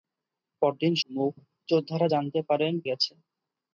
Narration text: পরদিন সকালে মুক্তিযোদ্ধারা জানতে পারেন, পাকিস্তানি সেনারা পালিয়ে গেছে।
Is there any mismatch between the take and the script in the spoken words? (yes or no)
yes